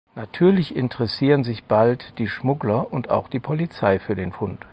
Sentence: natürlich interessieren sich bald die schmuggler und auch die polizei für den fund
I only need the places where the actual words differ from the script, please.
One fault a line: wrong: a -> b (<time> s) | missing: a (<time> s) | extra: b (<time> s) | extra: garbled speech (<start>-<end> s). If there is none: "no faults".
no faults